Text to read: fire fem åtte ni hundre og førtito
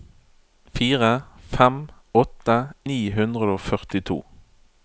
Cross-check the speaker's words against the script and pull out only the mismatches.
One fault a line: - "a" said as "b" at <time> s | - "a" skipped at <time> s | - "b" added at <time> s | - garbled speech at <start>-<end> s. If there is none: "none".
none